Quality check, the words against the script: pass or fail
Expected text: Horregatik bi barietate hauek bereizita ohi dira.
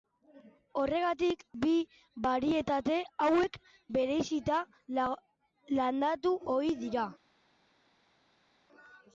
fail